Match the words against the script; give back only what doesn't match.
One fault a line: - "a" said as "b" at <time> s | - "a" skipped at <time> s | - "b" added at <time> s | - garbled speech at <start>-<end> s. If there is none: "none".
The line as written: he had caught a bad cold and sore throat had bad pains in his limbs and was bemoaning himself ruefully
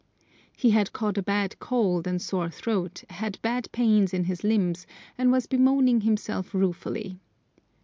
none